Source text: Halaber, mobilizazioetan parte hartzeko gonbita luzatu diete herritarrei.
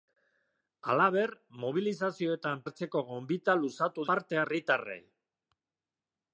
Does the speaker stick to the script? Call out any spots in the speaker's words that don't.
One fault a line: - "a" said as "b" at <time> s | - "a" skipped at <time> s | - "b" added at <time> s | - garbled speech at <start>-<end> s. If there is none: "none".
- "parte" skipped at 2.6 s
- "diete" said as "parte" at 4.1 s